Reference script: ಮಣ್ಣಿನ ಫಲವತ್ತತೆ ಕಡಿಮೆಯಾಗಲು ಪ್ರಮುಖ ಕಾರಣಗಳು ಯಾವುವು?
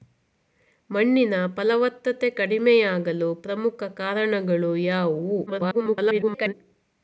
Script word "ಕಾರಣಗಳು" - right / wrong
right